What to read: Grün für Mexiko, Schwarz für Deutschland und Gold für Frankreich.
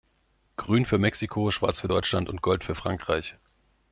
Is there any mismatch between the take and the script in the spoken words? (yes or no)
no